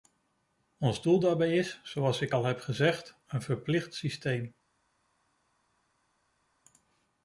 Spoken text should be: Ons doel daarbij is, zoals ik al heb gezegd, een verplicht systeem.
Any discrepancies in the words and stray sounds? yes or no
no